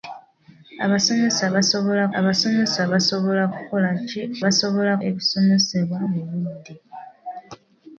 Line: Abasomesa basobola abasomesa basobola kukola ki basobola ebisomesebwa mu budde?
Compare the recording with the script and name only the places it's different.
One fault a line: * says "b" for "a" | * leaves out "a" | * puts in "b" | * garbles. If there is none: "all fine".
all fine